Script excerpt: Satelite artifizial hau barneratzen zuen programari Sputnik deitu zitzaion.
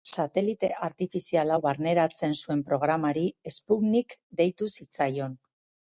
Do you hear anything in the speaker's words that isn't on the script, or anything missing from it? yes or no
no